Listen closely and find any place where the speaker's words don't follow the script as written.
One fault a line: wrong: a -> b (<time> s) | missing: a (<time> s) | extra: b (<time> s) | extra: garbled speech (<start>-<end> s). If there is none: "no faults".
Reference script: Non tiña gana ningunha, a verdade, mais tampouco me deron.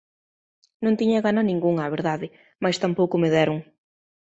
no faults